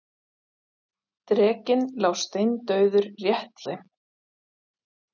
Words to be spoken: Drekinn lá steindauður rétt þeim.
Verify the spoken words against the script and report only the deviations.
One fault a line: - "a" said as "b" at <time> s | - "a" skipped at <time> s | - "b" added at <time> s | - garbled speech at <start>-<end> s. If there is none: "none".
none